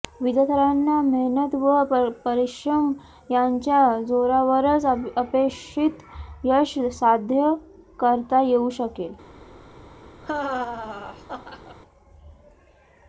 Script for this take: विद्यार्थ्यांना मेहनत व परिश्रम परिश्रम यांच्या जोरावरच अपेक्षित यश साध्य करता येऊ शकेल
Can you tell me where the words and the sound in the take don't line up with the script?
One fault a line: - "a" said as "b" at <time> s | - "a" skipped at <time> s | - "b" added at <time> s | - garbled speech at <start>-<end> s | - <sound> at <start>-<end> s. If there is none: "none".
- "परिश्रम" skipped at 2.9 s
- laugh at 10.2-11.8 s